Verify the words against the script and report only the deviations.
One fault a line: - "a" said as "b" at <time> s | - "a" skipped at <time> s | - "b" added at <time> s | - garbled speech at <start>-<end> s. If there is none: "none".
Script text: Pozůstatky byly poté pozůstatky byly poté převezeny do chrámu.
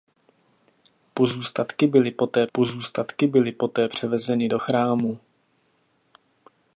none